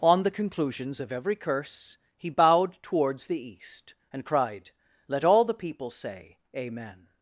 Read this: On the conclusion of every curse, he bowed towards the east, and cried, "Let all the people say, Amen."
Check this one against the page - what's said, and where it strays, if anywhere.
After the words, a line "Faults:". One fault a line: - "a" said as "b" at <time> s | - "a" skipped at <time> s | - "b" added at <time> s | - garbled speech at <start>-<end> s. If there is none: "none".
On the conclusions of every curse, he bowed towards the east, and cried, "Let all the people say, Amen."
Faults:
- "conclusion" said as "conclusions" at 0.3 s